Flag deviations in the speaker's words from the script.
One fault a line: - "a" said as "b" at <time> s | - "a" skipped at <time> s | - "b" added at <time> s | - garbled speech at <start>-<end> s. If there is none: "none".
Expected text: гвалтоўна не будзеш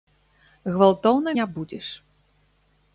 none